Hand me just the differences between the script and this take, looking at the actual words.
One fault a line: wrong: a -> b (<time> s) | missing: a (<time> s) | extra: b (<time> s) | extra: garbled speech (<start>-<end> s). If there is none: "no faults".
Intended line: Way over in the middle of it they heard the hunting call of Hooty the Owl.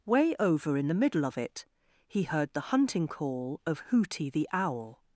wrong: they -> he (2.1 s)